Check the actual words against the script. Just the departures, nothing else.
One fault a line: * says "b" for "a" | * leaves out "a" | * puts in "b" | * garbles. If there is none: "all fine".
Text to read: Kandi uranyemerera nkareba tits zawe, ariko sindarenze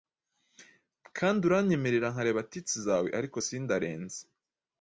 all fine